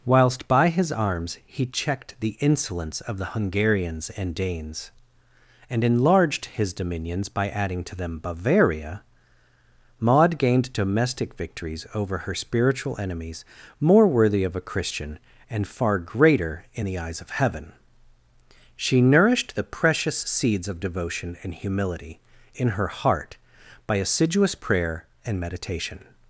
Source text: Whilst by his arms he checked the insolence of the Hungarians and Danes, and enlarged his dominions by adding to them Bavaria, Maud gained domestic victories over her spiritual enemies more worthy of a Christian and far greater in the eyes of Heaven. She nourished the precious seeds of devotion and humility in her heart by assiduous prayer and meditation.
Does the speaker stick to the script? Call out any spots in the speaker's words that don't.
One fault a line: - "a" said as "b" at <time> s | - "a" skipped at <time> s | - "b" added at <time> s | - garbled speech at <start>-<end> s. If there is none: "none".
none